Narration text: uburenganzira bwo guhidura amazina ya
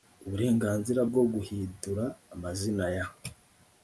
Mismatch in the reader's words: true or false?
false